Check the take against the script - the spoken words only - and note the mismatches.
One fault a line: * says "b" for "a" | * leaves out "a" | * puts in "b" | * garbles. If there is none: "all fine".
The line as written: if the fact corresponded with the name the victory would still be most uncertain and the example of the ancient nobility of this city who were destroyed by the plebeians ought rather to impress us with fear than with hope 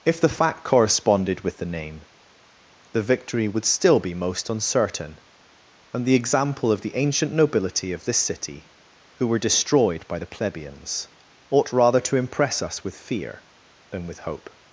all fine